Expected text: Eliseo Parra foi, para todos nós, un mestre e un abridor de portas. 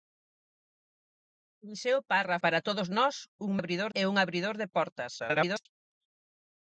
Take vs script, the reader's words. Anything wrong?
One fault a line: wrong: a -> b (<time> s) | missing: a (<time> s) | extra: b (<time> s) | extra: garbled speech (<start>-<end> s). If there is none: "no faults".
missing: foi (2.4 s)
wrong: mestre -> abridor (3.6 s)
extra: garbled speech (5.2-5.7 s)